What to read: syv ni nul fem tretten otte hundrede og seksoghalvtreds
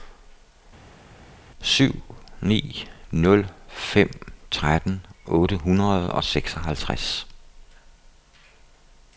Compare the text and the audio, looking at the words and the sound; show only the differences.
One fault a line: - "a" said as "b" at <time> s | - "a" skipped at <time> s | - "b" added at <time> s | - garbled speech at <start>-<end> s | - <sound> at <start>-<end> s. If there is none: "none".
none